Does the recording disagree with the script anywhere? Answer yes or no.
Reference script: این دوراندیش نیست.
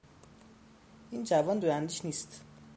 yes